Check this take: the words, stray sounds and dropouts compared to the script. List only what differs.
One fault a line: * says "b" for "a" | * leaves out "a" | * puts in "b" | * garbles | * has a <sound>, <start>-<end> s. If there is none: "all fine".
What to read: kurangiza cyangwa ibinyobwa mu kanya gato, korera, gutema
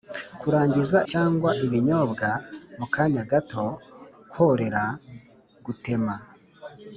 all fine